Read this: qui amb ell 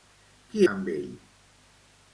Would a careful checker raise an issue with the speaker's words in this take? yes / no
no